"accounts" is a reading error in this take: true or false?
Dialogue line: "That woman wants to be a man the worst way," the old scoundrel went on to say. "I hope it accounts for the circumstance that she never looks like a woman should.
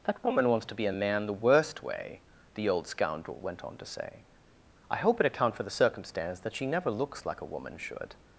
true